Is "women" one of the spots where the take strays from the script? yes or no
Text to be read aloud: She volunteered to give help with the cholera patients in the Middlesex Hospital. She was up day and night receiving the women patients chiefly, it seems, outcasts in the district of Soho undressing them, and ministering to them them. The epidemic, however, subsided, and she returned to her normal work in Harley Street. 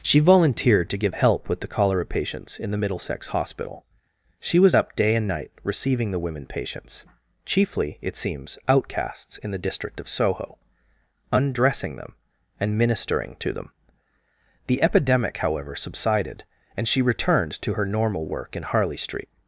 no